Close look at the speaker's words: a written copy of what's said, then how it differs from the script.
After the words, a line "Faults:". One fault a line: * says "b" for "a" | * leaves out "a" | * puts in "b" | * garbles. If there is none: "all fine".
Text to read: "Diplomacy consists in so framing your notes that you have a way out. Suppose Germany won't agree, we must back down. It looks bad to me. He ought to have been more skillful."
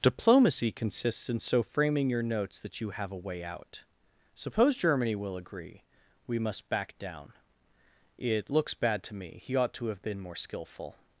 "Diplomacy consists in so framing your notes that you have a way out. Suppose Germany will agree, we must back down. It looks bad to me. He ought to have been more skillful."
Faults:
* says "will" for "won't"